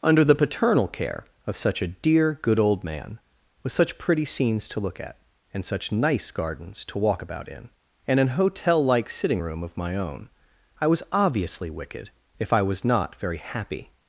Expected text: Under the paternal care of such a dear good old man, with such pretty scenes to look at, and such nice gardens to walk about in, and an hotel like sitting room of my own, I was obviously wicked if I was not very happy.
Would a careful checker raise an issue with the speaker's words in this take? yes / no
no